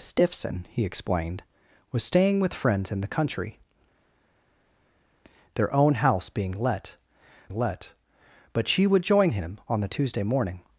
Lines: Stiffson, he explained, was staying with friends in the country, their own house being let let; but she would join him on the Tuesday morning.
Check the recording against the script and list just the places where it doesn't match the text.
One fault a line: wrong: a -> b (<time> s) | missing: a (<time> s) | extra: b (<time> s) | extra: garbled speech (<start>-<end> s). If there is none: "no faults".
no faults